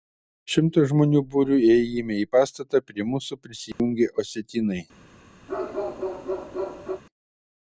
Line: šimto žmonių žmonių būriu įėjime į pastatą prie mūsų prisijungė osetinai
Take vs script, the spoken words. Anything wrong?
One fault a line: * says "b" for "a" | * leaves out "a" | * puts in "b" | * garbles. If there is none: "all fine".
* leaves out "žmonių"